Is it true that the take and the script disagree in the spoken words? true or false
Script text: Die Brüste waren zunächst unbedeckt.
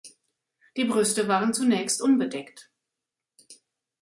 false